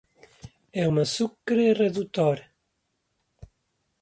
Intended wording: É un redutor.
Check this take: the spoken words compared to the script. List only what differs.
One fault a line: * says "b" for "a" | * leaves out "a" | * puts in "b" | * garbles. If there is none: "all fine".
* puts in "azucre"